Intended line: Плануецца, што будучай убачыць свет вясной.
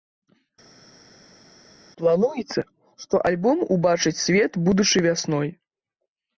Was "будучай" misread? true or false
true